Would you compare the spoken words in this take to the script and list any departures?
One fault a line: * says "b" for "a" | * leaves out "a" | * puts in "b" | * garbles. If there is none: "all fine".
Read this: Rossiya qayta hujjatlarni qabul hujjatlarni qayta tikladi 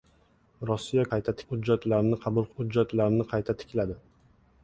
all fine